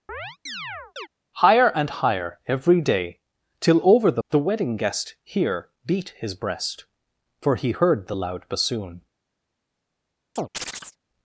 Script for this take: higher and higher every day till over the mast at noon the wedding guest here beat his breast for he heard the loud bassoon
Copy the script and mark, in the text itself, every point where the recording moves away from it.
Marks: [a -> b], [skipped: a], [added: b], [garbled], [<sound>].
[chirp] higher and higher every day till over the [skipped: mast at noon] the wedding guest here beat his breast for he heard the loud bassoon [chirp]